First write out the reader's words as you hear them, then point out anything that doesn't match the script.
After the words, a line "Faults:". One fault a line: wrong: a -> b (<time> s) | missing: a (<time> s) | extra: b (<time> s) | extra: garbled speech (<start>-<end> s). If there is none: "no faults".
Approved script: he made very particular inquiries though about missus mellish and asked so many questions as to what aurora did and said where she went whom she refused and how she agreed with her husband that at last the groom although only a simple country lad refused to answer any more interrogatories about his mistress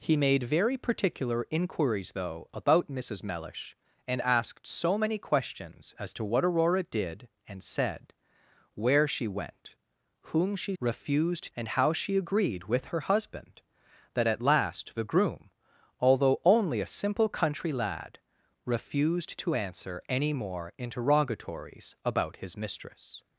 he made very particular inquiries though about missus mellish and asked so many questions as to what aurora did and said where she went whom she refused and how she agreed with her husband that at last the groom although only a simple country lad refused to answer any more interrogatories about his mistress
Faults:
no faults